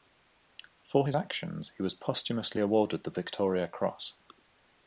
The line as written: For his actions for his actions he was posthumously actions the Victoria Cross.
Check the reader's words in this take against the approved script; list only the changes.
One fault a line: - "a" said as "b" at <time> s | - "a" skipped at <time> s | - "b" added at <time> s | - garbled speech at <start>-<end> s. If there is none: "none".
- "for his actions" skipped at 1.7 s
- "actions" said as "awarded" at 2.6 s